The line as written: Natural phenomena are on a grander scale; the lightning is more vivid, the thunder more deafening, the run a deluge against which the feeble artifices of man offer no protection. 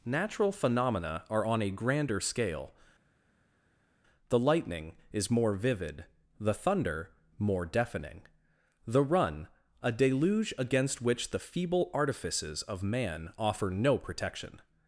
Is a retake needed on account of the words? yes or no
no